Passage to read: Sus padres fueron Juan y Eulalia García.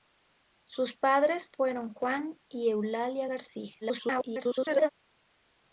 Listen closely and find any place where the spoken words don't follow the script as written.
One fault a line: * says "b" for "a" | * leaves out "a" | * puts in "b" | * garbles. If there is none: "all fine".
* garbles